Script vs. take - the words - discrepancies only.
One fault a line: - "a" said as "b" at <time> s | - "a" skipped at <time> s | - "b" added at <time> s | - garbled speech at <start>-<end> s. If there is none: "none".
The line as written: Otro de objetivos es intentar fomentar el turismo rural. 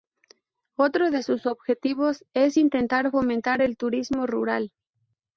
- "sus" added at 1.2 s